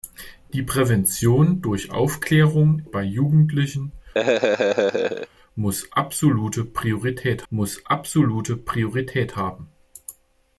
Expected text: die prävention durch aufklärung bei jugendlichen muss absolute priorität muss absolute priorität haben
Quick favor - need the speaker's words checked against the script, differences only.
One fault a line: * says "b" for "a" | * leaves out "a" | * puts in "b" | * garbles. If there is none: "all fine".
all fine